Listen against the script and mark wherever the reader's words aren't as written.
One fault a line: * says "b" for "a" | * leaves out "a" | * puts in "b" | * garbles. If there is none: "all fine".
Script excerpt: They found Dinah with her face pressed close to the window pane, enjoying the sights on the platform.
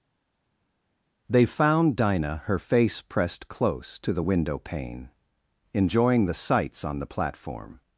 * leaves out "with"